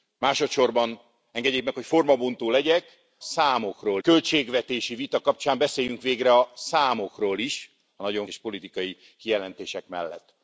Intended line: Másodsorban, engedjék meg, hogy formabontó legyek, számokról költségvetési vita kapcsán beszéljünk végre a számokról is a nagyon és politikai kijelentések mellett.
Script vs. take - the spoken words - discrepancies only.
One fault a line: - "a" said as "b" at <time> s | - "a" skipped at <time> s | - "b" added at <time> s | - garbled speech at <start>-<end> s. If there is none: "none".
none